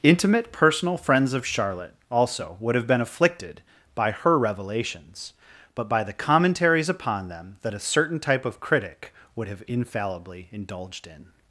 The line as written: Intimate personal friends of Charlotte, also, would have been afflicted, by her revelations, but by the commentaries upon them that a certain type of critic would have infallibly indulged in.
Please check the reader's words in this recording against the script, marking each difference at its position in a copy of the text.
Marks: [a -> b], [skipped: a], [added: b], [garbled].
Intimate personal friends of Charlotte, also, would have been afflicted, by her revelations, but by the commentaries upon them that a certain type of critic would have infallibly indulged in.